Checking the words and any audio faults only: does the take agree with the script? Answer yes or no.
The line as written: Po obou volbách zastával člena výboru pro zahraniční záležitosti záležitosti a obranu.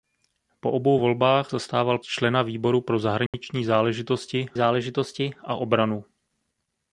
no